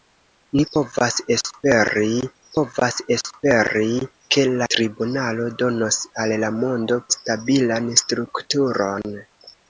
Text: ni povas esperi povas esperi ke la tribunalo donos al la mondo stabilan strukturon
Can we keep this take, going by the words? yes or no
yes